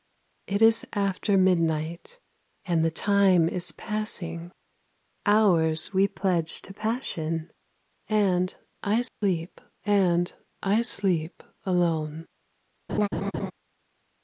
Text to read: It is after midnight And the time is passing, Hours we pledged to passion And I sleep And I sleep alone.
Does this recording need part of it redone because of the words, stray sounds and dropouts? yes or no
yes